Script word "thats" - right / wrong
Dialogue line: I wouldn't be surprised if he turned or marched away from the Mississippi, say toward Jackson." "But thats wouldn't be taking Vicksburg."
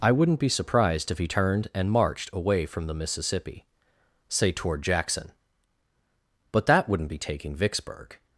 wrong